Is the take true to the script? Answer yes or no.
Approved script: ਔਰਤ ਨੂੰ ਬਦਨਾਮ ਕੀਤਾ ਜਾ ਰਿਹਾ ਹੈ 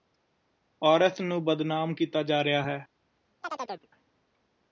yes